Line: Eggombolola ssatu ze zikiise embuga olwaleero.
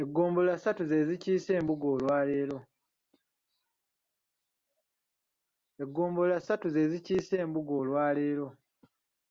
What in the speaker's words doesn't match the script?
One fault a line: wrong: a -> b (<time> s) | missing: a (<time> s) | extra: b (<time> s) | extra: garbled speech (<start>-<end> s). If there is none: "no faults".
no faults